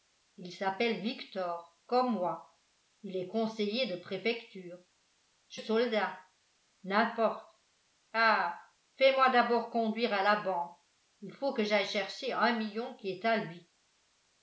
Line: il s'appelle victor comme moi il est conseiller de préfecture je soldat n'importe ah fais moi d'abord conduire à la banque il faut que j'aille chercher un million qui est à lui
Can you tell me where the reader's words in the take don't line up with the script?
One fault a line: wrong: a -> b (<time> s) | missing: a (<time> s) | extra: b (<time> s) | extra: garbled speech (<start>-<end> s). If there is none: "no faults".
no faults